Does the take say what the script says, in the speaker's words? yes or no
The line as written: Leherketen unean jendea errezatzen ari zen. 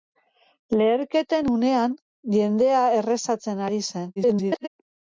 no